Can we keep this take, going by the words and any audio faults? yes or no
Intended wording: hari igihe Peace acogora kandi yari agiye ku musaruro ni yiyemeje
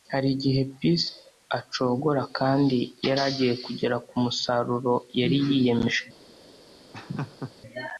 no